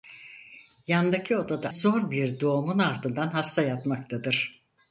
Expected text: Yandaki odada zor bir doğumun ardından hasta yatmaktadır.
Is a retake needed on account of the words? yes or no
no